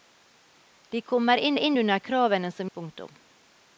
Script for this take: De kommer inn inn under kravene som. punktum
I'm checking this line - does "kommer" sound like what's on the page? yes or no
yes